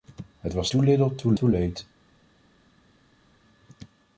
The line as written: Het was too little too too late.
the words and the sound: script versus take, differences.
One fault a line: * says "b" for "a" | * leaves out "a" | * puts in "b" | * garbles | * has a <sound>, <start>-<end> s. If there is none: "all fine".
all fine